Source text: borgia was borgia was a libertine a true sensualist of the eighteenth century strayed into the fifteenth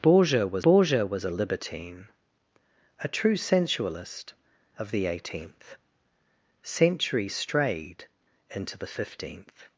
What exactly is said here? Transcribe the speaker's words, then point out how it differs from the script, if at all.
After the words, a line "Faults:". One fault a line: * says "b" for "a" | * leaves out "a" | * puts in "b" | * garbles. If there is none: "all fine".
borgia was borgia was a libertine a true sensualist of the eighteenth century strayed into the fifteenth
Faults:
all fine